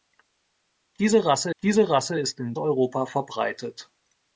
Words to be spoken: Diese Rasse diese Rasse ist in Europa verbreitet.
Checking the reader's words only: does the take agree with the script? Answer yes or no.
yes